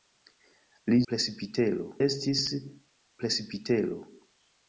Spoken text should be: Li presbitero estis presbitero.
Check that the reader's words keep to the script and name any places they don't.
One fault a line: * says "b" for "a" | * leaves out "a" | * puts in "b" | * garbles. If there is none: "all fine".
all fine